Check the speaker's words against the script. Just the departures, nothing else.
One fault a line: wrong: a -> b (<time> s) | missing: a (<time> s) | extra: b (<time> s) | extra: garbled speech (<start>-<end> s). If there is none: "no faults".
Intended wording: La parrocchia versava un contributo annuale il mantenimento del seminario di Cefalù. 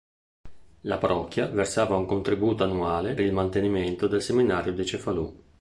no faults